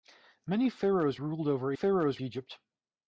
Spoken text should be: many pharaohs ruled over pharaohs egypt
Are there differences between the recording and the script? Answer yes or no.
no